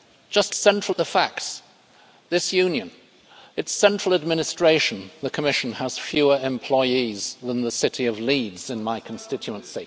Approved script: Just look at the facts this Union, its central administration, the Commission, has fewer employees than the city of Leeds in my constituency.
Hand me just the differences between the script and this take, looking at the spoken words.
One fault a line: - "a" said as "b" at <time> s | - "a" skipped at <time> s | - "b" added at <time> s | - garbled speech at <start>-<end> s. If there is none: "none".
- "look" said as "central" at 0.6 s